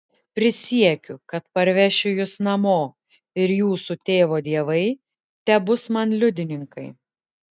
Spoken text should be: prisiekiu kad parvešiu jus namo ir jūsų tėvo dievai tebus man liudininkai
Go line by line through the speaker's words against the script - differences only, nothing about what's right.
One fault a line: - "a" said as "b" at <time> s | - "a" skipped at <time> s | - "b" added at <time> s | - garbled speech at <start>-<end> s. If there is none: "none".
none